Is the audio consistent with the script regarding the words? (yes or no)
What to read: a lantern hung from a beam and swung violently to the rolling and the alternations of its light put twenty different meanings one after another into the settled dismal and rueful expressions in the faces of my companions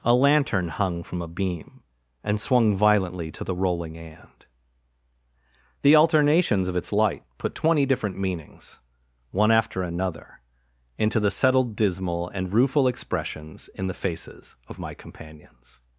yes